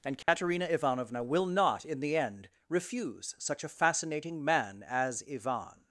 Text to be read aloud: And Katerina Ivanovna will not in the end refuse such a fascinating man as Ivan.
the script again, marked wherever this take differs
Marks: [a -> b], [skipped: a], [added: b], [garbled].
And Katerina Ivanovna will not in the end refuse such a fascinating man as Ivan.